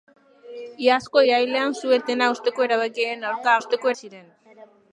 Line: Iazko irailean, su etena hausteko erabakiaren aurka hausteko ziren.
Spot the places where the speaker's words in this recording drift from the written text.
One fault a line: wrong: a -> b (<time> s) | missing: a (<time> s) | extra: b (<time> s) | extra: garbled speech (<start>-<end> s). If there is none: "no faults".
no faults